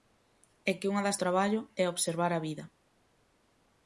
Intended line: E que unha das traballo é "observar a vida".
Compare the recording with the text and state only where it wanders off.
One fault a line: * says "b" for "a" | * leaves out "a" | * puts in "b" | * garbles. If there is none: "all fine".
all fine